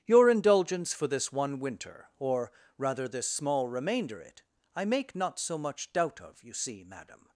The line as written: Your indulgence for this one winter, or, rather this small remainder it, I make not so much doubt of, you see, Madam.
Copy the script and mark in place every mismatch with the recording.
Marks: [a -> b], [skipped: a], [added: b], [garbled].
Your indulgence for this one winter, or, rather this small remainder it, I make not so much doubt of, you see, Madam.